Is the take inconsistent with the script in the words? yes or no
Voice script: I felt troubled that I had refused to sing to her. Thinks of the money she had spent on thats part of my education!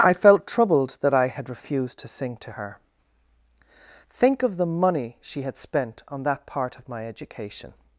yes